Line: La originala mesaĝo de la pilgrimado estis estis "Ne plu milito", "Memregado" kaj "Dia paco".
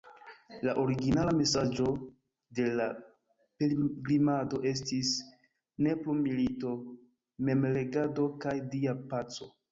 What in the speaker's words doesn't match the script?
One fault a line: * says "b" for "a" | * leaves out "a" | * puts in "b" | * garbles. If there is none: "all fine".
* leaves out "estis"